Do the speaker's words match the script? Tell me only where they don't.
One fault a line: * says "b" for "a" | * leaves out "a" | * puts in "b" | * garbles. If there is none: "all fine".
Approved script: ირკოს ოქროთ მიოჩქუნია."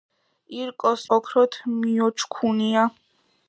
all fine